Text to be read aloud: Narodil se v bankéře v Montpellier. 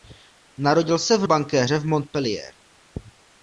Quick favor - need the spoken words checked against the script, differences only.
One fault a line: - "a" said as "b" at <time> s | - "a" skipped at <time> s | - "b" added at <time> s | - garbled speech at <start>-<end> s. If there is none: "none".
none